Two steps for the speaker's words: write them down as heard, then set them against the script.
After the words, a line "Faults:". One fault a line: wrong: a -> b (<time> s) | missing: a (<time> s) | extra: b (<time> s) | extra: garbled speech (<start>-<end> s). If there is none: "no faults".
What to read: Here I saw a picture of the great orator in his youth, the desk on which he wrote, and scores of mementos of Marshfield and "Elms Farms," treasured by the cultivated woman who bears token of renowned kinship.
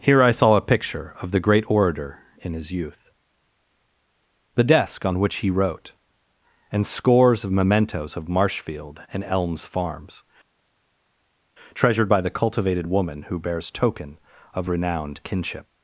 Here I saw a picture of the great orator in his youth, the desk on which he wrote, and scores of mementos of Marshfield and "Elms Farms," treasured by the cultivated woman who bears token of renowned kinship.
Faults:
no faults